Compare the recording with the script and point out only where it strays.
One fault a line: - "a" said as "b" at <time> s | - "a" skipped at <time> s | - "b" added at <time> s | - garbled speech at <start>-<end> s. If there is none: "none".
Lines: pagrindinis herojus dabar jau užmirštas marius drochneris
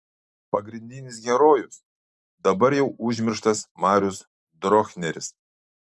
none